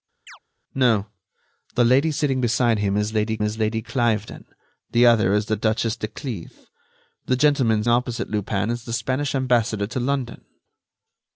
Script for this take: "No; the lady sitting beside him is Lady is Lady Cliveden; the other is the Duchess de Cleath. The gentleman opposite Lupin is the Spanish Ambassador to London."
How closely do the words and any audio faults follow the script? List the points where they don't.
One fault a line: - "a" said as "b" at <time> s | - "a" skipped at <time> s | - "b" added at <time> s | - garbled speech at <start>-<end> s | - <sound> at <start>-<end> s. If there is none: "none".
- chirp at 0.3-0.4 s